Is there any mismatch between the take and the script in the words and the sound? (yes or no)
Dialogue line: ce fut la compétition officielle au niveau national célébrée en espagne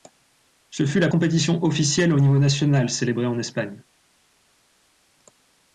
no